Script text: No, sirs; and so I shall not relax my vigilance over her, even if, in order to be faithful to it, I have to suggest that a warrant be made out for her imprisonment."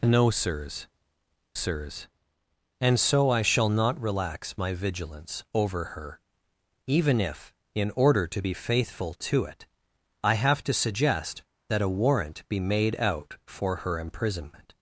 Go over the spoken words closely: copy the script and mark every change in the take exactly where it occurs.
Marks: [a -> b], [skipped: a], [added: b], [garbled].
No, sirs; [added: sirs] and so I shall not relax my vigilance over her, even if, in order to be faithful to it, I have to suggest that a warrant be made out for her imprisonment."